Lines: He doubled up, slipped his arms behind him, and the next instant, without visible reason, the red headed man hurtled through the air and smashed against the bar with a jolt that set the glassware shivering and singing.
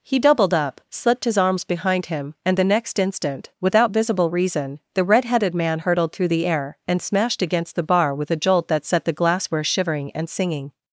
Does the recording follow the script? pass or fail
pass